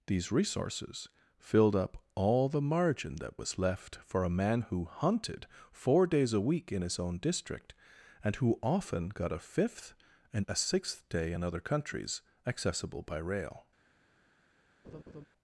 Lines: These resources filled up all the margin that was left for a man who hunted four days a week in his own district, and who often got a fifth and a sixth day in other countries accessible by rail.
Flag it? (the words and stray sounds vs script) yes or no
yes